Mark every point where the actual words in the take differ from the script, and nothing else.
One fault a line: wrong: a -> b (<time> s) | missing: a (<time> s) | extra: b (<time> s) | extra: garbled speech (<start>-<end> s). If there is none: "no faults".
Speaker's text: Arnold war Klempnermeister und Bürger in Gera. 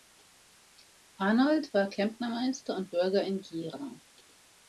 no faults